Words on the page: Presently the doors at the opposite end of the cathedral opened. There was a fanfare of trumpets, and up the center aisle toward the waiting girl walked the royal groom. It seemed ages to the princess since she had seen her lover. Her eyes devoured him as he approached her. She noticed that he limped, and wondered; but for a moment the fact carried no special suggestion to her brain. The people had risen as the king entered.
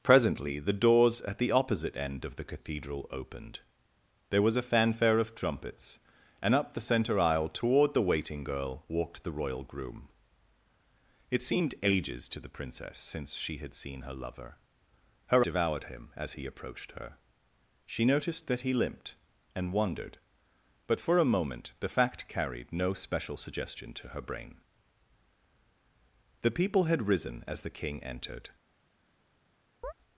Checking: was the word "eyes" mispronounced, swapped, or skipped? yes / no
yes